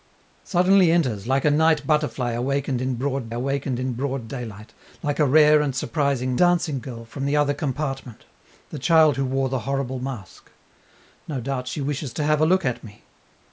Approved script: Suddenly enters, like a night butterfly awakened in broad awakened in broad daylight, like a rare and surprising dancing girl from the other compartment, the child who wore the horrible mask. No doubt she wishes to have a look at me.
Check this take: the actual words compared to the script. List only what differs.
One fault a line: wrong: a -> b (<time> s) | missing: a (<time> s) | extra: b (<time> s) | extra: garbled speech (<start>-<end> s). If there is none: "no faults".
no faults